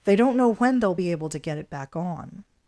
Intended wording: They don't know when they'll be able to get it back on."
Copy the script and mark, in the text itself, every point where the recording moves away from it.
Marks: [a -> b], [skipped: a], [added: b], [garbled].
They don't know when they'll be able to get it back on."